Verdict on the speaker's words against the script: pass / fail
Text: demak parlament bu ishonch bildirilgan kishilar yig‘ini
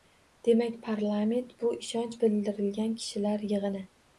pass